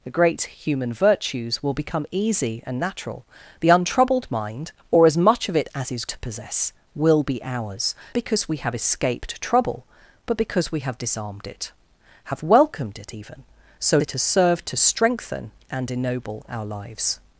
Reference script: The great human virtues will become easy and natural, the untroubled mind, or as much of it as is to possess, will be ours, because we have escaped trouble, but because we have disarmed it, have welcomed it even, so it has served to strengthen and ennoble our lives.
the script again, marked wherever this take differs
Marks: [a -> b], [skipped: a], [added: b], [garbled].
The great human virtues will become easy and natural, the untroubled mind, or as much of it as is to possess, will be ours, because we have escaped trouble, but because we have disarmed it, have welcomed it even, so it has served to strengthen and ennoble our lives.